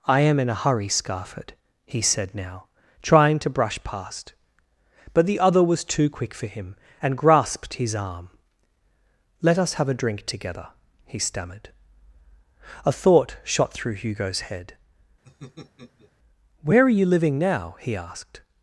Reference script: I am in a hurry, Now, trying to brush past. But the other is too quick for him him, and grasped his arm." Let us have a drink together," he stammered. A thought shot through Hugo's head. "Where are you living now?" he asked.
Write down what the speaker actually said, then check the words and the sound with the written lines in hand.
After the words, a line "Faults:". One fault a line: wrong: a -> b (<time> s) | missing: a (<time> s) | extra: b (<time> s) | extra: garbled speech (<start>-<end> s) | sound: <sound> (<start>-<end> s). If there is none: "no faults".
I am in a hurry, Scarford," he said now, trying to brush past. But the other was too quick for him, and grasped his arm." Let us have a drink together," he stammered. A thought shot through Hugo's head. "Where are you living now?" he asked.
Faults:
extra: Scarford he said (0.9 s)
wrong: is -> was (5.6 s)
missing: him (6.7 s)
sound: laugh (15.2-16.1 s)